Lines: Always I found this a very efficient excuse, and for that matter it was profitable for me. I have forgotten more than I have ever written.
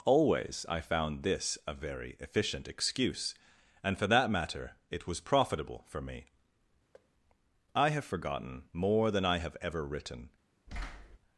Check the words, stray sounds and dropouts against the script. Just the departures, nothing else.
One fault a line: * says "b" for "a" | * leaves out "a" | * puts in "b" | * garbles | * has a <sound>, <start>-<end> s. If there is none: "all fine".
* has a thud, 6.9-7.1 s
* has a thud, 10.7-11.2 s